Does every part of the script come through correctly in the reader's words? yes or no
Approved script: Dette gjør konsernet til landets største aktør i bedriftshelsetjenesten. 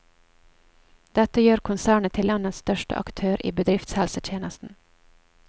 yes